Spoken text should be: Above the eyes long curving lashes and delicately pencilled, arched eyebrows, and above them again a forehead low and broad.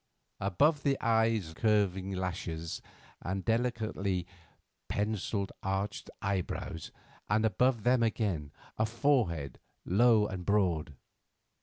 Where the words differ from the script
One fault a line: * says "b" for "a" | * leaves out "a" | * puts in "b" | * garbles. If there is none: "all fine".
* leaves out "long"